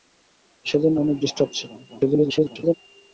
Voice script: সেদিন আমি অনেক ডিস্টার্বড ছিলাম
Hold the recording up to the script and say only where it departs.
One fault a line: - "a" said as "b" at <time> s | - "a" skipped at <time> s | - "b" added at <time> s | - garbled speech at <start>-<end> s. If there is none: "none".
- "আমি" skipped at 0.9 s
- garbled speech at 1.9-2.7 s